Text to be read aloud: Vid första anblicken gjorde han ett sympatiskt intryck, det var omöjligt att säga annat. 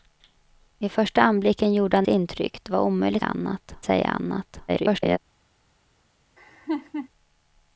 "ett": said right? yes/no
no